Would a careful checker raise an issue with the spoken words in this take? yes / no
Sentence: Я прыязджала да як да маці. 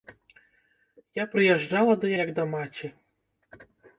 no